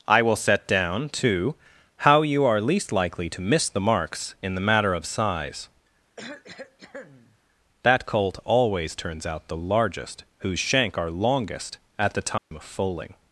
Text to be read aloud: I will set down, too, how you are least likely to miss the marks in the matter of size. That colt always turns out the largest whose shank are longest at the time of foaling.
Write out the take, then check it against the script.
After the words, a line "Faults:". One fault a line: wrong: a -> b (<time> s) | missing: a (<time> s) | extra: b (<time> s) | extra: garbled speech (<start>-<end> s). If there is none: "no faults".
I will set down, too, how you are least likely to miss the marks in the matter of size. That colt always turns out the largest whose shank are longest at the time of foaling.
Faults:
no faults